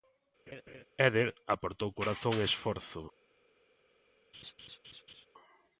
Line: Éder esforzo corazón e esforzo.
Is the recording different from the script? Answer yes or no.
yes